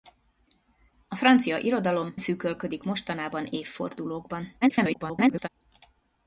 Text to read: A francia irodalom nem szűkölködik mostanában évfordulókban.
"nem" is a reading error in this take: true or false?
true